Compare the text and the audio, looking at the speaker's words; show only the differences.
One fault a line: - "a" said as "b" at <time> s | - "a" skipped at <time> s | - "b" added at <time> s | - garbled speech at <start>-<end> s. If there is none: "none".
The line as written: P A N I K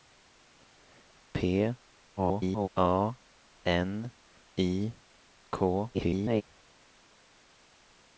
- garbled speech at 2.2-2.7 s
- garbled speech at 5.9-6.4 s